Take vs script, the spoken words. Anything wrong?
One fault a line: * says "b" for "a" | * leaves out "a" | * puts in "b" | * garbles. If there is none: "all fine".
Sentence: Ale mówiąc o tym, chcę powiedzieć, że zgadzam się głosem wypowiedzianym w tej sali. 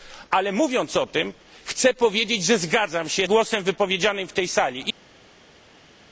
all fine